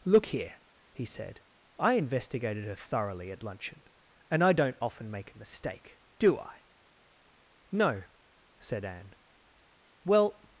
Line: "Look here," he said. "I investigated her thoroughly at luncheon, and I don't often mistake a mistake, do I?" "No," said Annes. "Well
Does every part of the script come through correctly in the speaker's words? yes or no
no